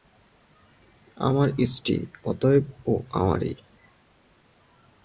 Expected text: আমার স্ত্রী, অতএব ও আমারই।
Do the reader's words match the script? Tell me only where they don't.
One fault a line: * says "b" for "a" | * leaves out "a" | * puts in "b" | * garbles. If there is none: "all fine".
all fine